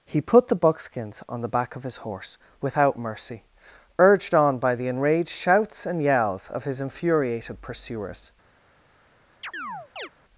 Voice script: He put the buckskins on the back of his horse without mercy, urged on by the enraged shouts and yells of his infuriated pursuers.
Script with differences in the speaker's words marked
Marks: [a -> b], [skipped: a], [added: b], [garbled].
He put the buckskins on the back of his horse without mercy, urged on by the enraged shouts and yells of his infuriated pursuers.